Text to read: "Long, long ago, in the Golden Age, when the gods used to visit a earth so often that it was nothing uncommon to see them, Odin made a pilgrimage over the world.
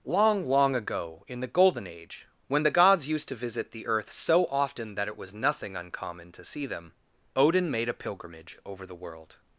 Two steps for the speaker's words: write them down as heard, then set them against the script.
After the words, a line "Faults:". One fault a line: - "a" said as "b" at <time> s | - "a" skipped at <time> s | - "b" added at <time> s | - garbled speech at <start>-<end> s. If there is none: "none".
"Long, long ago, in the Golden Age, when the gods used to visit the earth so often that it was nothing uncommon to see them, Odin made a pilgrimage over the world.
Faults:
- "a" said as "the" at 3.7 s